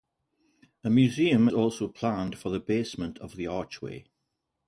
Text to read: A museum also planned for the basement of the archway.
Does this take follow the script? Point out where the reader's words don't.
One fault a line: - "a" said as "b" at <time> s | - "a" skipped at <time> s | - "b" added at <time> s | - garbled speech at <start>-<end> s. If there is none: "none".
none